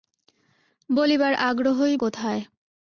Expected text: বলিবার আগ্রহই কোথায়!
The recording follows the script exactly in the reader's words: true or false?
true